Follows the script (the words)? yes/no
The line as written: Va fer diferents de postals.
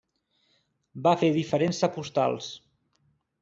yes